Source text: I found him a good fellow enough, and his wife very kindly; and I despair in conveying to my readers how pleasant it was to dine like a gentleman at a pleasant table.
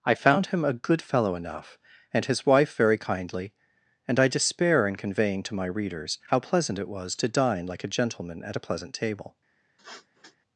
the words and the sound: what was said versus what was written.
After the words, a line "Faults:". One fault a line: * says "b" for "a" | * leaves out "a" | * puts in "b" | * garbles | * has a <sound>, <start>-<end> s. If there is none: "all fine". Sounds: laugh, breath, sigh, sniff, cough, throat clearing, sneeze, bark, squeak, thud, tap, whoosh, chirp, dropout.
I found him a good fellow enough, and his wife very kindly; and I despair in conveying to my readers how pleasant it was to dine like a gentleman at a pleasant table.
Faults:
* has a sniff, 9.8-10.4 s